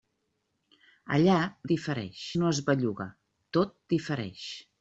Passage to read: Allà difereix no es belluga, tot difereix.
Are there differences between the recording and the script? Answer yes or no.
no